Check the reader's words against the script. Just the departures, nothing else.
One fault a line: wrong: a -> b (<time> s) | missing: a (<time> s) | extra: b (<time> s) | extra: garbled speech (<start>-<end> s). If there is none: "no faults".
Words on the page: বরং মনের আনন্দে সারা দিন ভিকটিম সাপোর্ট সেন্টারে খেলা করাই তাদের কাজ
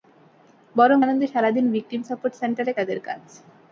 missing: মনের (1.0 s)
missing: খেলা করাই (2.7 s)